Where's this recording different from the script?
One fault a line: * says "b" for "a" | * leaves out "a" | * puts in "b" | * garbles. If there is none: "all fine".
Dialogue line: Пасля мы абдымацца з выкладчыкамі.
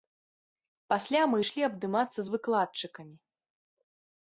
* puts in "ішлі"